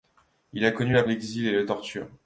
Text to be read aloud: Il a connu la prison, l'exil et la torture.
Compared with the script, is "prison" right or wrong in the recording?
wrong